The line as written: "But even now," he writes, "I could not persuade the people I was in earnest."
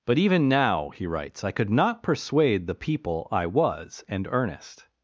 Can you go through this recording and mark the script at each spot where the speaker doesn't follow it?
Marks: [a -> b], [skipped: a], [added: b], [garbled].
"But even now," he writes, "I could not persuade the people I was [in -> and] earnest."